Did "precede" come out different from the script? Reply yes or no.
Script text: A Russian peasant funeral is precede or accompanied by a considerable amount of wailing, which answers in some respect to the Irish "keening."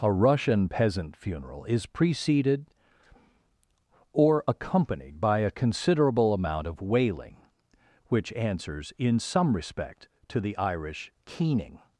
yes